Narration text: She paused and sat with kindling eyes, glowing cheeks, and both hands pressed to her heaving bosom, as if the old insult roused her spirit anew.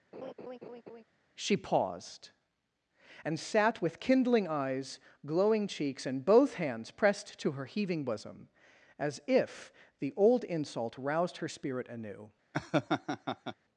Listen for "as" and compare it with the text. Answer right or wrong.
right